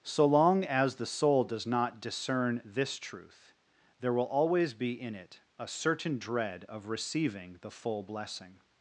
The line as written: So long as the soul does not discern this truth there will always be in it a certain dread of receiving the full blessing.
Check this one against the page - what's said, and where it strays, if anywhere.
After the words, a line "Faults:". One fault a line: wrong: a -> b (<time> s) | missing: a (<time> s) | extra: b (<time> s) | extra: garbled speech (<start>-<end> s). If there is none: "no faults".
So long as the soul does not discern this truth there will always be in it a certain dread of receiving the full blessing.
Faults:
no faults